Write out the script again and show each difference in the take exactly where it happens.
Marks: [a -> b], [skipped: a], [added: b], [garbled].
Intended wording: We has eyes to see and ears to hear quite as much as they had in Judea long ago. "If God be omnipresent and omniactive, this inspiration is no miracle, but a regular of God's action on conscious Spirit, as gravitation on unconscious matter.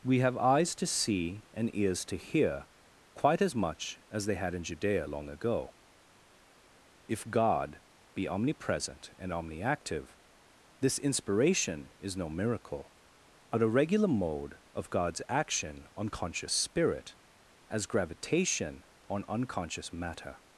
We [has -> have] eyes to see and ears to hear quite as much as they had in Judea long ago. "If God be omnipresent and omniactive, this inspiration is no miracle, but a regular [added: mode] of God's action on conscious Spirit, as gravitation on unconscious matter.